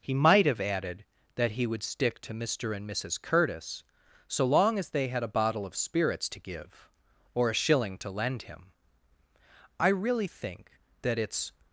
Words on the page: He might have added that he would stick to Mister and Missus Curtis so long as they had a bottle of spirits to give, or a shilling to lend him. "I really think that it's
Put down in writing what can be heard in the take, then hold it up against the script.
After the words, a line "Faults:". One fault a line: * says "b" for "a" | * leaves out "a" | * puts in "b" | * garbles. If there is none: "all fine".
He might have added that he would stick to Mister and Missus Curtis so long as they had a bottle of spirits to give, or a shilling to lend him. "I really think that it's
Faults:
all fine